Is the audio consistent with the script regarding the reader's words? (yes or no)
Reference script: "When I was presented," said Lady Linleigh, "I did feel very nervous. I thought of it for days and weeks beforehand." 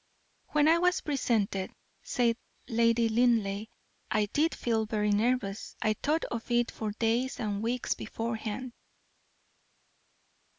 yes